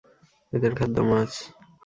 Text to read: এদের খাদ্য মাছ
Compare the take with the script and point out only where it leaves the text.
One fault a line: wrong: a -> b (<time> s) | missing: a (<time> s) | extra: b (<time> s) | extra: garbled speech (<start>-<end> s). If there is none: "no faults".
no faults